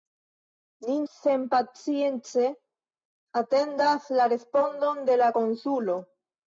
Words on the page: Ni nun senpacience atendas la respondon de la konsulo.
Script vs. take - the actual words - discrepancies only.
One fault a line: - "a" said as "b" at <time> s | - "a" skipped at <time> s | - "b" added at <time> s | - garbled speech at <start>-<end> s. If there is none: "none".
- "nun" skipped at 0.9 s